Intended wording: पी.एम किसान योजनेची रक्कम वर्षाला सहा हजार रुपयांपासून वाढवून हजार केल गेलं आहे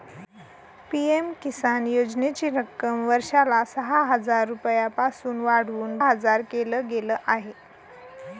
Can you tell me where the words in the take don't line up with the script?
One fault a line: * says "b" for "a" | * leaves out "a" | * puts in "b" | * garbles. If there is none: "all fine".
all fine